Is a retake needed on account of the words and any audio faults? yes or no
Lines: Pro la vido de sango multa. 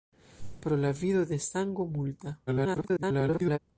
yes